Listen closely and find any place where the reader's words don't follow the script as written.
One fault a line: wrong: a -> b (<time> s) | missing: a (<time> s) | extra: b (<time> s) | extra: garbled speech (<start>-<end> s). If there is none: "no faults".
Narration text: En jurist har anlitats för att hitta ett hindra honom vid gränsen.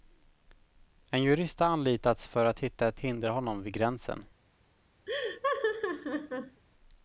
no faults